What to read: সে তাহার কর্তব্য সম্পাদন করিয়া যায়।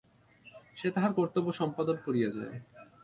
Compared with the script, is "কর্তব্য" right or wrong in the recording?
right